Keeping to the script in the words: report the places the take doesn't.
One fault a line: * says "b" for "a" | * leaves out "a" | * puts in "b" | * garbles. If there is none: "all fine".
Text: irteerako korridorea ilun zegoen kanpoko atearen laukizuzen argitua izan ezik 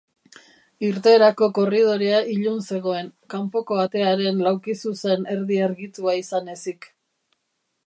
* puts in "erdi"